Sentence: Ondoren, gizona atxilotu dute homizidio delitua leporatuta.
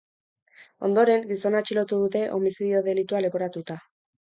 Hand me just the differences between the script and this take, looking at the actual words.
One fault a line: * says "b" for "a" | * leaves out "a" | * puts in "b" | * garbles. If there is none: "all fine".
all fine